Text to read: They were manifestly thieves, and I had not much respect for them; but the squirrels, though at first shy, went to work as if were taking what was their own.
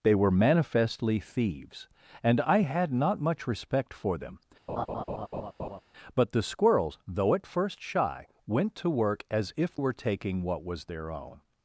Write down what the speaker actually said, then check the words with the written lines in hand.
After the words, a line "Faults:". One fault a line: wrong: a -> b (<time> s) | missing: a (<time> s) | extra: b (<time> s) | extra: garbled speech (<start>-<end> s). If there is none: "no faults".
They were manifestly thieves, and I had not much respect for them; but the squirrels, though at first shy, went to work as if were taking what was their own.
Faults:
no faults